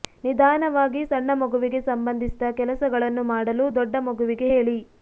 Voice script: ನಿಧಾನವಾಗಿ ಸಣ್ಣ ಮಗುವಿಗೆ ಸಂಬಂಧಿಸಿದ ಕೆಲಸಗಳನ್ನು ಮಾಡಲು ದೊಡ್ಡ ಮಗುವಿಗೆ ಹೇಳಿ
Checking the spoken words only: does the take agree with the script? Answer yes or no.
yes